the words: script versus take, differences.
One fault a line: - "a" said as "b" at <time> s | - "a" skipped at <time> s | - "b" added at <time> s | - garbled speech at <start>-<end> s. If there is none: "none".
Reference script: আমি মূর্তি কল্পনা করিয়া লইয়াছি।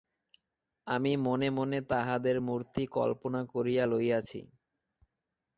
- "মনে মনে তাহাদের" added at 1.2 s